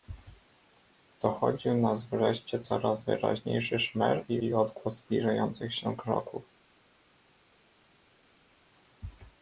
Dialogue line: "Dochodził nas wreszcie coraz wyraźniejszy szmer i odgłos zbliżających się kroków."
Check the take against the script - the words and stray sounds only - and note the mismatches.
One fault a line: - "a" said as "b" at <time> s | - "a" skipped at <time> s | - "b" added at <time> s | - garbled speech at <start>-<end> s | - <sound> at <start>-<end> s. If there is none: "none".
- "i" added at 4.4 s